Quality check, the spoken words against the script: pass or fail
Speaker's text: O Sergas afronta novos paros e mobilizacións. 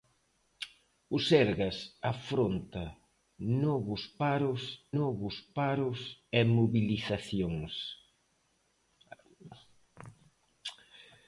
fail